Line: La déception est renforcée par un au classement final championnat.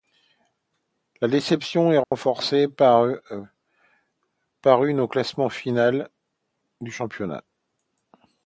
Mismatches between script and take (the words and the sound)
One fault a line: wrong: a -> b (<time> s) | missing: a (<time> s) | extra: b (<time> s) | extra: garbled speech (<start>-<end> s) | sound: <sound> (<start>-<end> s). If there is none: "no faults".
sound: dropout (2.0-2.1 s)
wrong: un -> une (4.8 s)
extra: du (6.8 s)